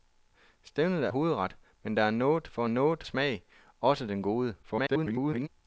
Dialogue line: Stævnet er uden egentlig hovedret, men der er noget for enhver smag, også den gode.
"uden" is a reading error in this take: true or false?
true